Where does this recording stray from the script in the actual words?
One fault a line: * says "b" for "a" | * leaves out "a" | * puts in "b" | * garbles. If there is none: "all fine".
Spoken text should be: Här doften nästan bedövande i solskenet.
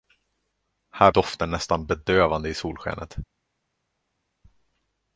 all fine